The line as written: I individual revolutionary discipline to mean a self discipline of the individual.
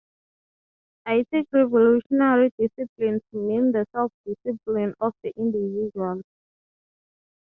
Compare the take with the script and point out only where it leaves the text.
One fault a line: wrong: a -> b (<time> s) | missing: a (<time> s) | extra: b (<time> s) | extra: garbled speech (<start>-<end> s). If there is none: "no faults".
wrong: individual -> take (1.3 s)
wrong: a -> the (3.7 s)